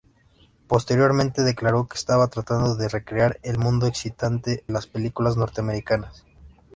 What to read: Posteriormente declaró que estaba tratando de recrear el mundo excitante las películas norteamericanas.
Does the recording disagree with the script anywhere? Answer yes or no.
no